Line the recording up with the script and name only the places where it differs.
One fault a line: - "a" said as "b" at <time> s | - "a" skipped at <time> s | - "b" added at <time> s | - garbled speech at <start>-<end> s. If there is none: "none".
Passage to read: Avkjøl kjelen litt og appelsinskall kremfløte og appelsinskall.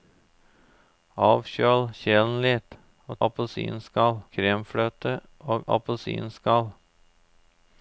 none